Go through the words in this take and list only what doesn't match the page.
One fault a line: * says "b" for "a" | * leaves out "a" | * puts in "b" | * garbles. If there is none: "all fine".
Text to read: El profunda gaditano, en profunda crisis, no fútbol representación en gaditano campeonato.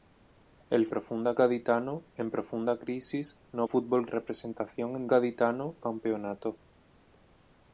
all fine